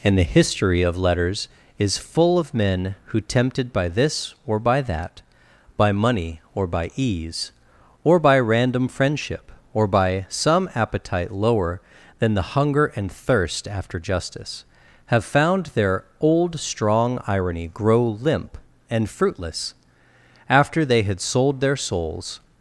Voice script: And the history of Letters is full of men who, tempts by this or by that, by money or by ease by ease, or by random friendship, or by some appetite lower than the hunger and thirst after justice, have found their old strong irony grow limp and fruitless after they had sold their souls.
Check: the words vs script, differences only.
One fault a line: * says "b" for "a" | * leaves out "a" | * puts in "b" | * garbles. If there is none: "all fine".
* says "tempted" for "tempts"
* leaves out "by ease"